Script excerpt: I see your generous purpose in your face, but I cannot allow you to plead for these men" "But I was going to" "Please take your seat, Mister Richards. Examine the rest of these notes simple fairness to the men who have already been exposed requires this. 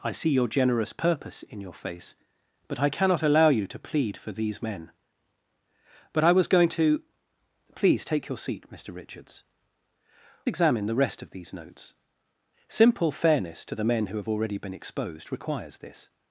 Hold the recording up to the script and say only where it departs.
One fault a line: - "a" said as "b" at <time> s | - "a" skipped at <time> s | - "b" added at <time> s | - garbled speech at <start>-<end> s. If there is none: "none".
none